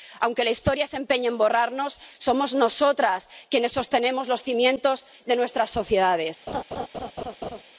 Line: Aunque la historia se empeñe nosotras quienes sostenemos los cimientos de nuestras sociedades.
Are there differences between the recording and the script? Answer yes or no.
yes